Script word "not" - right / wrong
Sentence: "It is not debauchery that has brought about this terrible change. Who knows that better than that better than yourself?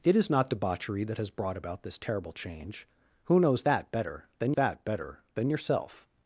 right